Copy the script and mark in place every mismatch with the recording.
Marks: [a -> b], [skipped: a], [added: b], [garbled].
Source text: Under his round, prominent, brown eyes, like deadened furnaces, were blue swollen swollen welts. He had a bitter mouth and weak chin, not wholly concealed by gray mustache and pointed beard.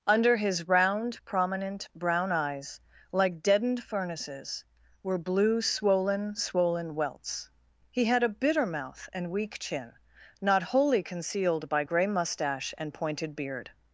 Under his round, prominent, brown eyes, like deadened furnaces, were blue swollen swollen welts. He had a bitter mouth and weak chin, not wholly concealed by gray mustache and pointed beard.